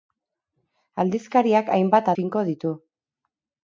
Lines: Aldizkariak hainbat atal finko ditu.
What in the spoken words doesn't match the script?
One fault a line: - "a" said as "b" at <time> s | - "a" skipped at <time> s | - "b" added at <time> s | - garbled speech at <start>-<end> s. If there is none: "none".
- "atal" skipped at 2.1 s